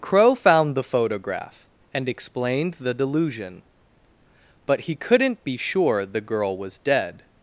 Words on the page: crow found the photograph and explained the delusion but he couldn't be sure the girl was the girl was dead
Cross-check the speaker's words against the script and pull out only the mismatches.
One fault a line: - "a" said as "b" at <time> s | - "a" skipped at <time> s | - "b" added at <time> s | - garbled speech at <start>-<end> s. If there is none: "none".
- "the girl was" skipped at 6.8 s